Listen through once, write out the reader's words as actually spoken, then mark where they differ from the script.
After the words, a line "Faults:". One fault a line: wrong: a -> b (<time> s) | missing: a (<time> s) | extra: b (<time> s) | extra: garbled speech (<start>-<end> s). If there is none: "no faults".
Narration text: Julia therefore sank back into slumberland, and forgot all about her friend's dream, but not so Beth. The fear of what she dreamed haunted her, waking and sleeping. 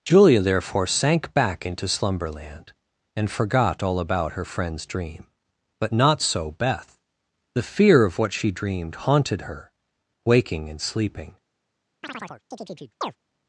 Julia therefore sank back into slumberland, and forgot all about her friend's dream, but not so Beth. The fear of what she dreamed haunted her, waking and sleeping.
Faults:
no faults